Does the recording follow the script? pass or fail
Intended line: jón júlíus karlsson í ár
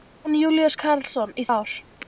pass